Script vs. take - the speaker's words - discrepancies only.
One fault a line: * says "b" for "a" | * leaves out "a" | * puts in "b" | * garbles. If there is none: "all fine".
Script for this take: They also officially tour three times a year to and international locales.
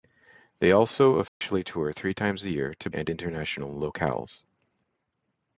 all fine